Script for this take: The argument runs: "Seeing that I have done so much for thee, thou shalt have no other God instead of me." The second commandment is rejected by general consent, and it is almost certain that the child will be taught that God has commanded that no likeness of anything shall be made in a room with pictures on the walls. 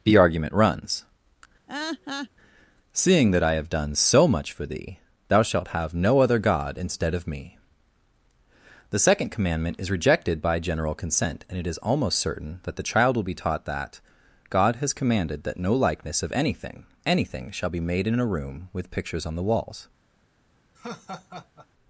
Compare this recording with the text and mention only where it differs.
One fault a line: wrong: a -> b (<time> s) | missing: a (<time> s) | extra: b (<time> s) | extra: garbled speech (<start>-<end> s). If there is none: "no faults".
extra: anything (17.0 s)